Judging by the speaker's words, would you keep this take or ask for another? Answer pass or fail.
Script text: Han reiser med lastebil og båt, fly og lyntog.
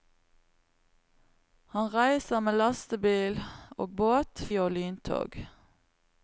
fail